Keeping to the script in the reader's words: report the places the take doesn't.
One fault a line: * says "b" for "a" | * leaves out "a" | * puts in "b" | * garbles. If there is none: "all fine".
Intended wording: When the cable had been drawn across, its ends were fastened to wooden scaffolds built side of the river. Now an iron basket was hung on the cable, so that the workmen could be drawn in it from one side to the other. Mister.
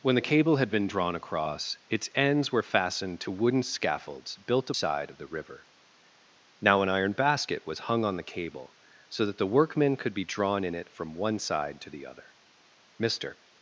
all fine